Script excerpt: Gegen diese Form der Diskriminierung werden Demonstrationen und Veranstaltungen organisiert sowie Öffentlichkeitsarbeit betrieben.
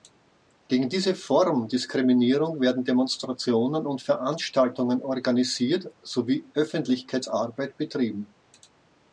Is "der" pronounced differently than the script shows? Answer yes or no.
yes